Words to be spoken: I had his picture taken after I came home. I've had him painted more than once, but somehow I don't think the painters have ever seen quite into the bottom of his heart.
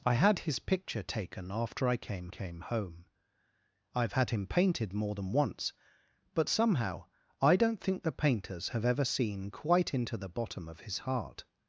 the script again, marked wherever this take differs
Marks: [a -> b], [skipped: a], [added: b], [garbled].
I had his picture taken after I came [added: came] home. I've had him painted more than once, but somehow I don't think the painters have ever seen quite into the bottom of his heart.